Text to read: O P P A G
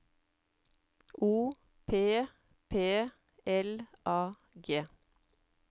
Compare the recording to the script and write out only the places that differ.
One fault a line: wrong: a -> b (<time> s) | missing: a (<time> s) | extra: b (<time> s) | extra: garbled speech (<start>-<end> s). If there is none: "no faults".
extra: L (3.4 s)